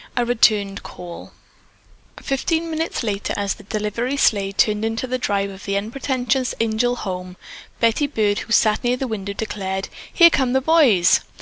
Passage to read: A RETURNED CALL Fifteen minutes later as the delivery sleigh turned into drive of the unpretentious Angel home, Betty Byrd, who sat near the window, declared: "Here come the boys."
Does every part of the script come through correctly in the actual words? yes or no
no